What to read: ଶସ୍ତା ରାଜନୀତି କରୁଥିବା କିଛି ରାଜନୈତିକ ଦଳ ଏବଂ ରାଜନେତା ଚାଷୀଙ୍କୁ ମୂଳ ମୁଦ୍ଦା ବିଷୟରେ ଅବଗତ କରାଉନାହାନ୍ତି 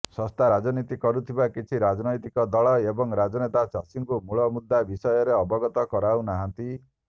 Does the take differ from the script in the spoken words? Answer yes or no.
no